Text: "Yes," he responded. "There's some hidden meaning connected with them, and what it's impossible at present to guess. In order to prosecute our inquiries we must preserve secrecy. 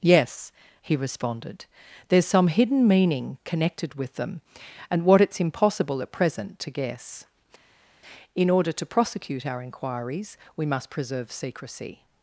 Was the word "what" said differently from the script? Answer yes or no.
no